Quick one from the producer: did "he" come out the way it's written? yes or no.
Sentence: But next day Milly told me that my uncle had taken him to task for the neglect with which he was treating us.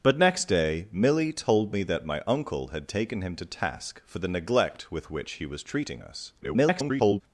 yes